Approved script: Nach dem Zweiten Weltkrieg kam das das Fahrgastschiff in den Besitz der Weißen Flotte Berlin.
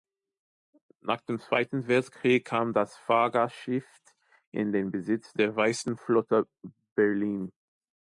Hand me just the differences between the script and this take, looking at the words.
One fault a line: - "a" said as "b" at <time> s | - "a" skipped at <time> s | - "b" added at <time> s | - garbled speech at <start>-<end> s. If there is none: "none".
- "das" skipped at 3.0 s